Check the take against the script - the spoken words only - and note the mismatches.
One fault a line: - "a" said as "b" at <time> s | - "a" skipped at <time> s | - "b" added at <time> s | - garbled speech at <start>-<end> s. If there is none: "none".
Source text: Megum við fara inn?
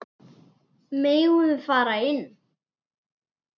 none